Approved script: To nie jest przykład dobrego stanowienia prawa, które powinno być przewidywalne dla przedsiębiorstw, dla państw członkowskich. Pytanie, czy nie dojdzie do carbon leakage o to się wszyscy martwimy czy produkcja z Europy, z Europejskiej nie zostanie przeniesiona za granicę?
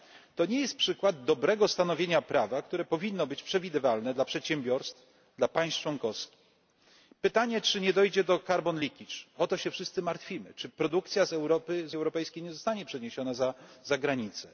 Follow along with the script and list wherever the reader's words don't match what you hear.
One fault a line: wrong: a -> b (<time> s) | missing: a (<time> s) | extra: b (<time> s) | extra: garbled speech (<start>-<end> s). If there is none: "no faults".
no faults